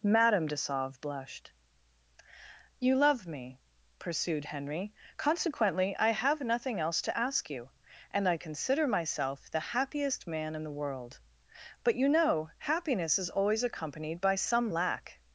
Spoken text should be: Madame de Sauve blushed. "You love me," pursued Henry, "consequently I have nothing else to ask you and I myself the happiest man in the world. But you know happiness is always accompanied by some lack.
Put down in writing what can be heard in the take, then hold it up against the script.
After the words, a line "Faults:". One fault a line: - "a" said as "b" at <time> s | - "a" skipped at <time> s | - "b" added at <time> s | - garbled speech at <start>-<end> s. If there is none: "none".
Madame de Sauve blushed. "You love me," pursued Henry, "consequently I have nothing else to ask you and I consider myself the happiest man in the world. But you know happiness is always accompanied by some lack.
Faults:
- "consider" added at 8.4 s